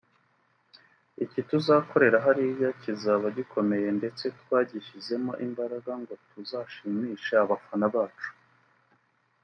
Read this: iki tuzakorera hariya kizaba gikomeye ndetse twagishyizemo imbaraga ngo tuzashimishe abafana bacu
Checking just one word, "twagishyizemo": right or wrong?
right